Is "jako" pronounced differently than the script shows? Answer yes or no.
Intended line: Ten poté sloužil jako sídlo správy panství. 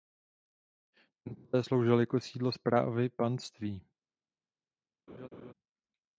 no